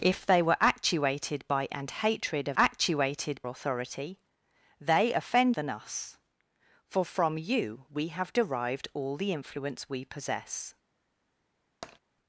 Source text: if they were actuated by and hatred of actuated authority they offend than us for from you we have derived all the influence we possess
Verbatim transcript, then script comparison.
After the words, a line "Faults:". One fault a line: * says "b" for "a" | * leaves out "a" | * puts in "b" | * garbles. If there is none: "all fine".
if they were actuated by and hatred of actuated authority they offend than us for from you we have derived all the influence we possess
Faults:
all fine